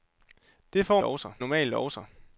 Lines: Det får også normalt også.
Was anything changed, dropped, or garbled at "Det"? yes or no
no